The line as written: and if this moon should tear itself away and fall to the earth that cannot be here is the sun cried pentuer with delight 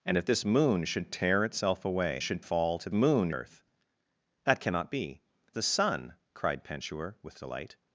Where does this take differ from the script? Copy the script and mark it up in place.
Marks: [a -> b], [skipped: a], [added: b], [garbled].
and if this moon should tear itself away [and -> should] fall to [the -> moon] earth that cannot be [skipped: here is] the sun cried pentuer with delight